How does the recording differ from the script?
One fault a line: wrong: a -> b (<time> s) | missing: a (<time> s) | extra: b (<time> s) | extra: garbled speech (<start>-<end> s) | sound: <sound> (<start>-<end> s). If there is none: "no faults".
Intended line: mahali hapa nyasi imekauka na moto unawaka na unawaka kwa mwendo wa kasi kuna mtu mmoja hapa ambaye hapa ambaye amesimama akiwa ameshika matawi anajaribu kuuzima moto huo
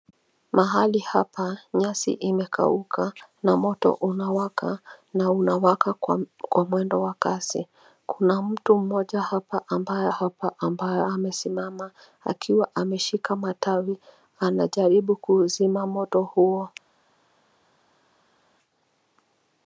no faults